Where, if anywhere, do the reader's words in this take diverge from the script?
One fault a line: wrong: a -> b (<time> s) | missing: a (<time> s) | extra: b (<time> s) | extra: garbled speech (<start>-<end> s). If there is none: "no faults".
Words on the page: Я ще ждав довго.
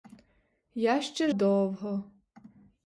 missing: ждав (1.3 s)